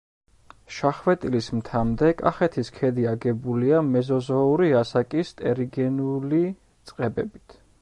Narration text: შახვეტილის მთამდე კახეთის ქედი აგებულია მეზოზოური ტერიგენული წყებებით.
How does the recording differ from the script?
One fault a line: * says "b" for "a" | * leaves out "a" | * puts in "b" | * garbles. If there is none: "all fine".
* puts in "ასაკის"